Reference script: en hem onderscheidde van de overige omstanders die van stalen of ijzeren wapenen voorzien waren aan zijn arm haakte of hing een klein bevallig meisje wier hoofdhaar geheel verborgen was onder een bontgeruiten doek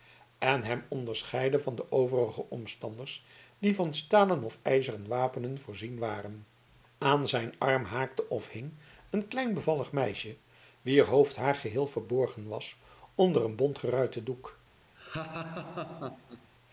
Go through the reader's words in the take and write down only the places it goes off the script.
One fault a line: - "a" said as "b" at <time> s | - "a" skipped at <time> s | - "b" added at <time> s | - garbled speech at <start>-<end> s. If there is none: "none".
none